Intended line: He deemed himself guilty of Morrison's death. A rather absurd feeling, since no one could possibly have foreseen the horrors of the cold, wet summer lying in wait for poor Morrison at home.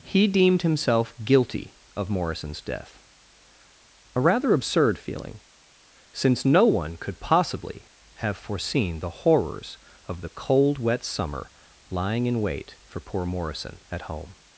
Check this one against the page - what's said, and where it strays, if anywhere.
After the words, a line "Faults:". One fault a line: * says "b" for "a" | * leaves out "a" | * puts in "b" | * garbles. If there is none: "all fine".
He deemed himself guilty of Morrison's death. A rather absurd feeling, since no one could possibly have foreseen the horrors of the cold, wet summer lying in wait for poor Morrison at home.
Faults:
all fine